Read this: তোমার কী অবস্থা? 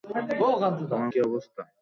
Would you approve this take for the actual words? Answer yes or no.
yes